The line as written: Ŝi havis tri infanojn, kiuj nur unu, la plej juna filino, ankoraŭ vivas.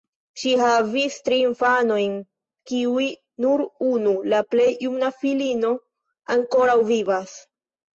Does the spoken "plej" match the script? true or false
true